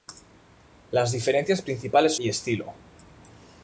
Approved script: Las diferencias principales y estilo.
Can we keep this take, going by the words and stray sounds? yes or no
yes